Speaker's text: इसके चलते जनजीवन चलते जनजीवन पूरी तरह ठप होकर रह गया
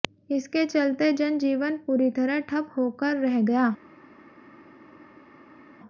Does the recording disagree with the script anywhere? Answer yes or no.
yes